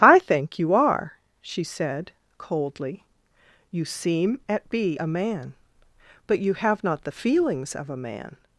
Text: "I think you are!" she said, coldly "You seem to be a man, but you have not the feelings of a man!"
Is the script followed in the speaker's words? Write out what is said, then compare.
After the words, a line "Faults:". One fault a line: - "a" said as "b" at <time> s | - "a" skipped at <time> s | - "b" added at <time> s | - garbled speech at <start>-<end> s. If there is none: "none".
"I think you are!" she said, coldly "You seem at be a man, but you have not the feelings of a man!"
Faults:
- "to" said as "at" at 4.5 s